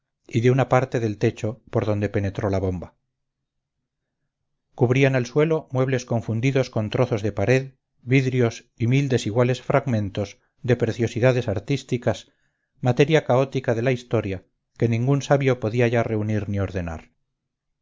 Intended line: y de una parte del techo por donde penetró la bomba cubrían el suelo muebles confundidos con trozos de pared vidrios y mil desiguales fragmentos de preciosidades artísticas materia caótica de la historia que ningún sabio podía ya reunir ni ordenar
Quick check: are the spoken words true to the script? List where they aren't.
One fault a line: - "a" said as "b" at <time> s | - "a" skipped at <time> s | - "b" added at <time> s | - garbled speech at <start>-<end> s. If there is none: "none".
none